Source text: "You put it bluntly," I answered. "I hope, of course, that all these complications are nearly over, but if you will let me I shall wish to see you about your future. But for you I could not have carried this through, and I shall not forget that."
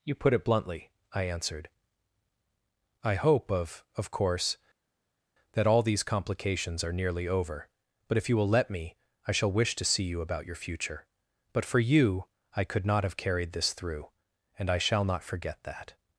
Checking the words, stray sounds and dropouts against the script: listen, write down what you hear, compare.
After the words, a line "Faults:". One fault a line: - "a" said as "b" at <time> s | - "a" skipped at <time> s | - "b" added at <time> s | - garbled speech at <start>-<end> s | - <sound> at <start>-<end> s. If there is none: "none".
"You put it bluntly," I answered. "I hope, of of course, that all these complications are nearly over, but if you will let me I shall wish to see you about your future. But for you I could not have carried this through, and I shall not forget that."
Faults:
- "of" added at 4.0 s